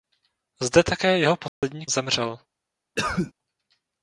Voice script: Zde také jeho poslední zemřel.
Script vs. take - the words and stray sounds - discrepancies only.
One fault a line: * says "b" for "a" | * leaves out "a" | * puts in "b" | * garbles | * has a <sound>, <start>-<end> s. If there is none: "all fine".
* has a dropout, 1.5-1.6 s
* has a cough, 3.0-3.3 s